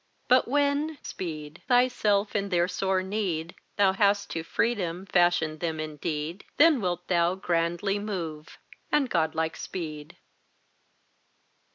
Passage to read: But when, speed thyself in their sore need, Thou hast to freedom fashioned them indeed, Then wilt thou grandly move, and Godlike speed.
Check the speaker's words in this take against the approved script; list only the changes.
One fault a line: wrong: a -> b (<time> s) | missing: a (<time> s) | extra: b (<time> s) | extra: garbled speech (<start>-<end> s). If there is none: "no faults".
no faults